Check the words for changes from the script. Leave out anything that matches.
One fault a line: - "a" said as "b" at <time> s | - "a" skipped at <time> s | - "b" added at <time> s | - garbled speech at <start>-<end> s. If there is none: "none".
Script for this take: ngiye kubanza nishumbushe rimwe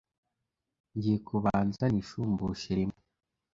none